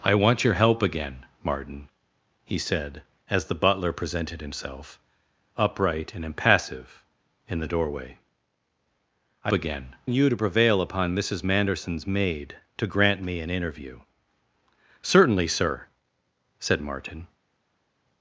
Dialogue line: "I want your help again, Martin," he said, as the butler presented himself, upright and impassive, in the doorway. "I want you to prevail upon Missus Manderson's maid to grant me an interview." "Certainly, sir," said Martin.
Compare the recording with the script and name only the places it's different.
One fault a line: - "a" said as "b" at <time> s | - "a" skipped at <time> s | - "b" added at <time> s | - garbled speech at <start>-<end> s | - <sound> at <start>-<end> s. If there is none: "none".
- "want" said as "again" at 9.5 s